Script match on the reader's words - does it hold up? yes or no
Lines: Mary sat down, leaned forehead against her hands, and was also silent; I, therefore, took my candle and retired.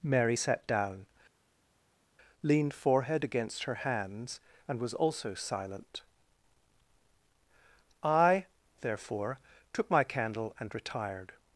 yes